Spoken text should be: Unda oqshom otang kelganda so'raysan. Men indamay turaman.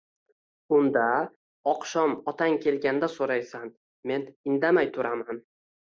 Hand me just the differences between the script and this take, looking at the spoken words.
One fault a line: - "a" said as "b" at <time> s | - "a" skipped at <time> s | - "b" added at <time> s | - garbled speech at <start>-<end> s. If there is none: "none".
none